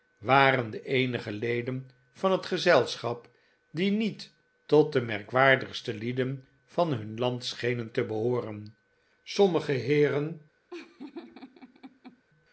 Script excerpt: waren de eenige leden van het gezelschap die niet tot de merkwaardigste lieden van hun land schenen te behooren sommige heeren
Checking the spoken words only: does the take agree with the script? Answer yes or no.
yes